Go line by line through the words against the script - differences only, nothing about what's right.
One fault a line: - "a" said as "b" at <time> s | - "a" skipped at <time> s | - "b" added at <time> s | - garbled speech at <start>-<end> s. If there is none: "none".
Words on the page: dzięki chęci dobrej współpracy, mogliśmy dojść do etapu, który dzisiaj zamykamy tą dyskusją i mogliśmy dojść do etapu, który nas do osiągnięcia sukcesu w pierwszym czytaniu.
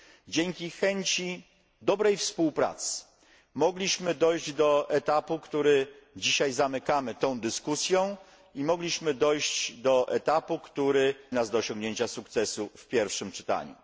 none